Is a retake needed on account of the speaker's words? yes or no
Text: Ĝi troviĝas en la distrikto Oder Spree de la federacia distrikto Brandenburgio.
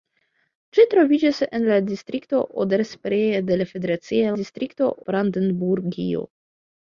no